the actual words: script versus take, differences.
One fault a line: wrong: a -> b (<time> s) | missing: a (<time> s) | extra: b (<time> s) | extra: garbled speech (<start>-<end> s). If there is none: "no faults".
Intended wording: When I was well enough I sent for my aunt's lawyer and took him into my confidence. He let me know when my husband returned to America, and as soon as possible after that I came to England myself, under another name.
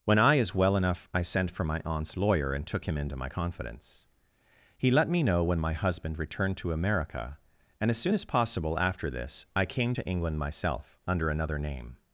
wrong: was -> is (0.3 s)
wrong: that -> this (9.1 s)